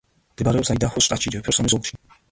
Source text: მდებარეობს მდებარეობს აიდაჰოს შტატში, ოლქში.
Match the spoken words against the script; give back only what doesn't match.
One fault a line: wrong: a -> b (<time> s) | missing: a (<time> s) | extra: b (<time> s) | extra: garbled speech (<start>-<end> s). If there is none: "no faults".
missing: მდებარეობს (0.7 s)
extra: ჯეფერსონის (1.4 s)